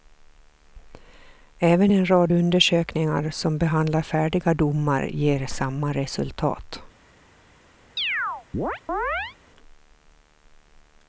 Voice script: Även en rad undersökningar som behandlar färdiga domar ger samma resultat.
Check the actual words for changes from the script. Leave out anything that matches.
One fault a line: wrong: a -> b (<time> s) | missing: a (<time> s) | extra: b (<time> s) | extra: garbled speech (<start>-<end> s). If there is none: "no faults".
no faults